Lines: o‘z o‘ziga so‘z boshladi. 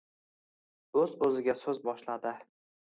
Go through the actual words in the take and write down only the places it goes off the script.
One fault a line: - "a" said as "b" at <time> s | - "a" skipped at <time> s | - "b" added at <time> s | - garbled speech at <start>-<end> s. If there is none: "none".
none